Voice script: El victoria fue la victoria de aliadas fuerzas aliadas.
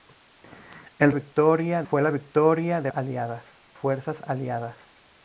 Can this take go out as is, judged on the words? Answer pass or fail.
pass